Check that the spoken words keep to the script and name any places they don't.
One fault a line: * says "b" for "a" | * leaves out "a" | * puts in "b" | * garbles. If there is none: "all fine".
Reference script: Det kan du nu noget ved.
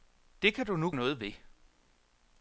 all fine